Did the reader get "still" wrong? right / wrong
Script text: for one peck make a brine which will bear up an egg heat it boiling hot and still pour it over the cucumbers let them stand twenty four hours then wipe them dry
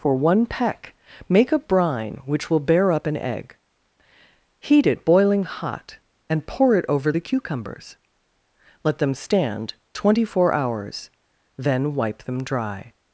wrong